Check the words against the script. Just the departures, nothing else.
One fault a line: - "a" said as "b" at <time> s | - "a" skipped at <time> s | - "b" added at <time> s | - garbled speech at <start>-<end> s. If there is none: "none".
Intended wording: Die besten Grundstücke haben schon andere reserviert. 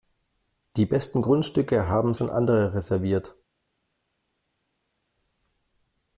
none